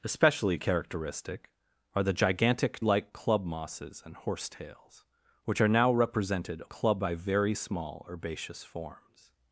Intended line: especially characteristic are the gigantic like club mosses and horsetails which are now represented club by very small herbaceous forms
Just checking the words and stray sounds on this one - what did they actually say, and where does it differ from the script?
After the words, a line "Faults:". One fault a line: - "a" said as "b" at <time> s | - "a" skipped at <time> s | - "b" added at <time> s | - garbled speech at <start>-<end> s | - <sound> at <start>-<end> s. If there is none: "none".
especially characteristic are the gigantic like club mosses and horsetails which are now represented club by very small herbaceous forms
Faults:
none